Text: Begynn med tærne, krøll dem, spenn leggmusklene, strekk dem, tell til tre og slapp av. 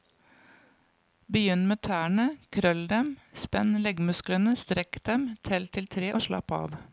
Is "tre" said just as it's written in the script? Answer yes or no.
yes